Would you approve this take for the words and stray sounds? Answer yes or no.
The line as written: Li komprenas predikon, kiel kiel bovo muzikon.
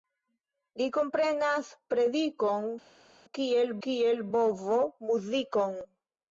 yes